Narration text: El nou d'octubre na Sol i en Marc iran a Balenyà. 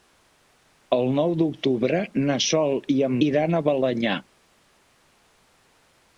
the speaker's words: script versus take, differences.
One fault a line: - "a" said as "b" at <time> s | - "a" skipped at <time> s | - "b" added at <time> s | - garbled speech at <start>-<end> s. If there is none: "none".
- "Marc" skipped at 3.2 s